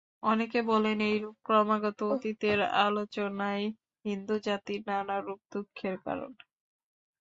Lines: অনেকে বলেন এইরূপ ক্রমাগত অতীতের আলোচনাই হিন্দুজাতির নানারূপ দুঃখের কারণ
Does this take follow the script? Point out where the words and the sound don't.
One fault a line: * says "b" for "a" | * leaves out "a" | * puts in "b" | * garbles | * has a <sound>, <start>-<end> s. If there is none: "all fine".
all fine